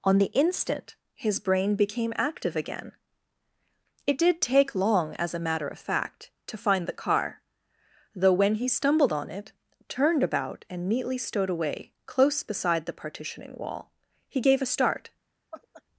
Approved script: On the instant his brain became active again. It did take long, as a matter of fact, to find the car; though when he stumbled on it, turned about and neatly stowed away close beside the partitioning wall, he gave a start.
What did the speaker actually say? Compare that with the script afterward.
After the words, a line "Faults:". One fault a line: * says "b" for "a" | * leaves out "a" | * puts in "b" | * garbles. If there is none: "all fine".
On the instant his brain became active again. It did take long, as a matter of fact, to find the car; though when he stumbled on it, turned about and neatly stowed away close beside the partitioning wall, he gave a start.
Faults:
all fine